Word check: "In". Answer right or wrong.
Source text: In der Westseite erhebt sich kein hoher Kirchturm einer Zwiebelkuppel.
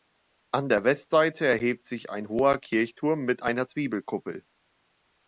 wrong